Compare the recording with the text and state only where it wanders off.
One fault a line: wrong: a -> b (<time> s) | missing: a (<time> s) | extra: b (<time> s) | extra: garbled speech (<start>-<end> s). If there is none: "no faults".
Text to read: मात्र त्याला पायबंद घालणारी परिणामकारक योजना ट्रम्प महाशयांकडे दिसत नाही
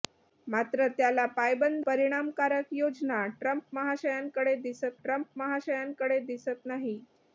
missing: घालणारी (1.9 s)
extra: ट्रम्प महाशयांकडे दिसत (5.0 s)